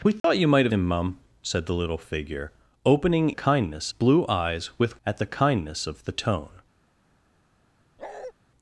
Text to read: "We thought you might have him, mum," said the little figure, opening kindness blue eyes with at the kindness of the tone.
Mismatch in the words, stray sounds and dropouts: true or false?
true